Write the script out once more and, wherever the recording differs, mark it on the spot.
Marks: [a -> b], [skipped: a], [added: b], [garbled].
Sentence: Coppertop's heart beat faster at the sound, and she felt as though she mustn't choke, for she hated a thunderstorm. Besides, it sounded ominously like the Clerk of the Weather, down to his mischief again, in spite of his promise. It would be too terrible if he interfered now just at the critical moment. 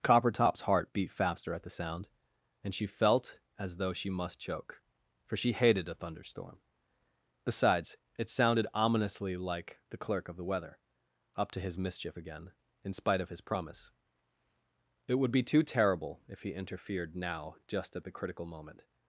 Coppertop's heart beat faster at the sound, and she felt as though she [mustn't -> must] choke, for she hated a thunderstorm. Besides, it sounded ominously like the Clerk of the Weather, [down -> up] to his mischief again, in spite of his promise. It would be too terrible if he interfered now just at the critical moment.